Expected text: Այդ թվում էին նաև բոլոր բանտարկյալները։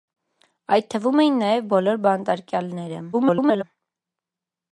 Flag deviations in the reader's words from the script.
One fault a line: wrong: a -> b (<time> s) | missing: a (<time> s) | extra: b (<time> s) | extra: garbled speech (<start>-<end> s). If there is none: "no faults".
extra: garbled speech (3.1-3.6 s)